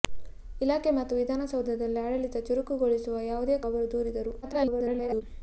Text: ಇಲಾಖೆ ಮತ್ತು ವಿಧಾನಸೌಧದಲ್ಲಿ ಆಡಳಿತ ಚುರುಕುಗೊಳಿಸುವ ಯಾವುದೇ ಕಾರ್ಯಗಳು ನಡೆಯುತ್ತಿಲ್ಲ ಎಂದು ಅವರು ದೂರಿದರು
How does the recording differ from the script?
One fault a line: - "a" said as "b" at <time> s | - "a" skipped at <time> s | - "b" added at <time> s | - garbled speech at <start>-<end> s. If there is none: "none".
- "ಕಾರ್ಯಗಳು ನಡೆಯುತ್ತಿಲ್ಲ ಎಂದು" skipped at 3.6 s
- garbled speech at 4.4-5.2 s